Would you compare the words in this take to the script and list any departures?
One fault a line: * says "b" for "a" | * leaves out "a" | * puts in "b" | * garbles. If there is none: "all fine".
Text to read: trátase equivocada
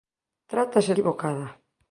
all fine